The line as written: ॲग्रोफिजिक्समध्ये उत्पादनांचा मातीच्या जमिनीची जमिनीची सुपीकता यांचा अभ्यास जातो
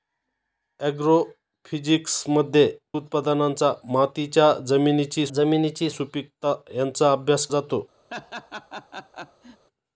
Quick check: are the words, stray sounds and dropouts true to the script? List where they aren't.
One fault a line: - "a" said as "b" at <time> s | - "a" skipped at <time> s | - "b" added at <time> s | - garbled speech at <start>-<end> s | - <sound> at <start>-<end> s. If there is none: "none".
- laugh at 8.1-9.7 s